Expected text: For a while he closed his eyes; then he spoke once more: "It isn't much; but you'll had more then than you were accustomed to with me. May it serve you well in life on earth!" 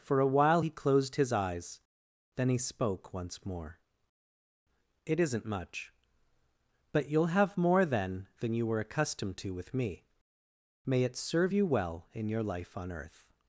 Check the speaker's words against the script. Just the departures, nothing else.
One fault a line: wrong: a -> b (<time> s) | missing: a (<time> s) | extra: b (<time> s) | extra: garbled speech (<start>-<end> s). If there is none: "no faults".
wrong: had -> have (7.3 s)
extra: your (12.3 s)